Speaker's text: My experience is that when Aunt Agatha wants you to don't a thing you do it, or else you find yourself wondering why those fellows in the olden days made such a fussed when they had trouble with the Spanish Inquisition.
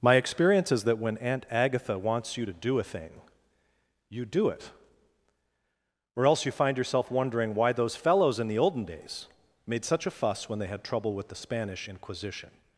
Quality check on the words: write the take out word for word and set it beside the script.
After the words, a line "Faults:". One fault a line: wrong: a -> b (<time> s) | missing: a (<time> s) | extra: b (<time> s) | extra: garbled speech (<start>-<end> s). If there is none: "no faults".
My experience is that when Aunt Agatha wants you to do a thing you do it, or else you find yourself wondering why those fellows in the olden days made such a fuss when they had trouble with the Spanish Inquisition.
Faults:
wrong: don't -> do (2.5 s)
wrong: fussed -> fuss (10.1 s)